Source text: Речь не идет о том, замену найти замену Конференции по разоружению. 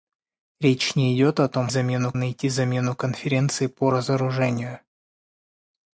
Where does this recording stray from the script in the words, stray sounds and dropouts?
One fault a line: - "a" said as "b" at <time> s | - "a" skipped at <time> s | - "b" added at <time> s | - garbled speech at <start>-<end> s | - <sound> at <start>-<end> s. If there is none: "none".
none